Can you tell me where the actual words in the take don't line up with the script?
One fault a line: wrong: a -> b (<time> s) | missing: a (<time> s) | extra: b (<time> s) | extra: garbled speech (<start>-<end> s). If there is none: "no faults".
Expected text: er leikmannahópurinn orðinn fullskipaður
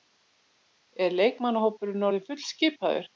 no faults